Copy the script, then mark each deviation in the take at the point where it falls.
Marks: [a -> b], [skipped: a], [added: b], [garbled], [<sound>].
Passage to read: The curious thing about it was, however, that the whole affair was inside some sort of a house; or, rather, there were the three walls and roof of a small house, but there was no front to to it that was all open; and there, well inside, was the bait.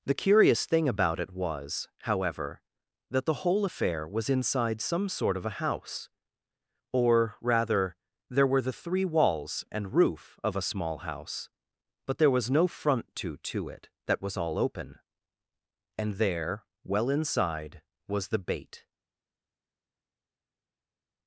The curious thing about it was, however, that the whole affair was inside some sort of a house; or, rather, there were the three walls and roof of a small house, but there was no front to to it that was all open; and there, well inside, was the bait.